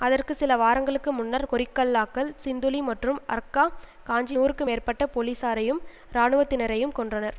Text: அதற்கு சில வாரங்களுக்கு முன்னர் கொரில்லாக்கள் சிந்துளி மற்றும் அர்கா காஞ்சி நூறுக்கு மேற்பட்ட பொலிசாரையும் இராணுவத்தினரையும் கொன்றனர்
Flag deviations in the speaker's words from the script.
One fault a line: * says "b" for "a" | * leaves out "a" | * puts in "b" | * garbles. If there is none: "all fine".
all fine